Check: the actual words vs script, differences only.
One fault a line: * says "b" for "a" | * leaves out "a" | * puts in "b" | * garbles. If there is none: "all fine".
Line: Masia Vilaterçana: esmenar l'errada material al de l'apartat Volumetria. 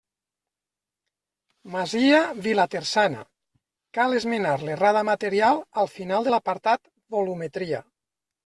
* puts in "cal"
* puts in "final"